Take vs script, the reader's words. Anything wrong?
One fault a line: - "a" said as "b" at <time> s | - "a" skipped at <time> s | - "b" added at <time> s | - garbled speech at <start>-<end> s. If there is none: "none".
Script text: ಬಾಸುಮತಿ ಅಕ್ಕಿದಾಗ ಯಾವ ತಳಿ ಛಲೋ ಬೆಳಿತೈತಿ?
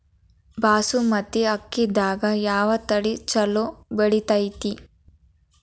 none